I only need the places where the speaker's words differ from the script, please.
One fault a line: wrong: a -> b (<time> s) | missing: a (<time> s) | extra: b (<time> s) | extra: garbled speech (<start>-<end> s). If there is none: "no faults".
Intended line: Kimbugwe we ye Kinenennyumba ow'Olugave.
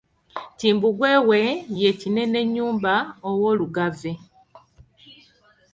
no faults